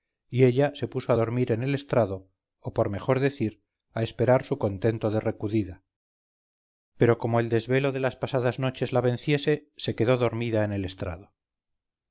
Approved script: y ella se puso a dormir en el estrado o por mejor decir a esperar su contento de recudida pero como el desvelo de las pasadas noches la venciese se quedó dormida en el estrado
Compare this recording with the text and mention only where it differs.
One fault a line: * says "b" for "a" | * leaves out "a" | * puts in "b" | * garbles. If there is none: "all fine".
all fine